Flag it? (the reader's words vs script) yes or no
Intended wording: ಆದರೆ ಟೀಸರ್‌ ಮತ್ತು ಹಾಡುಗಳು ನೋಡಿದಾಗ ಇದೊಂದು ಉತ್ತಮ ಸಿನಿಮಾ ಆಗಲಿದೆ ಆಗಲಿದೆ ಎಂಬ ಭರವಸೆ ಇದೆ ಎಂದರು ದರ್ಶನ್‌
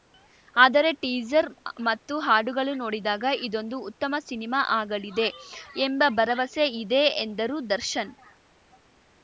yes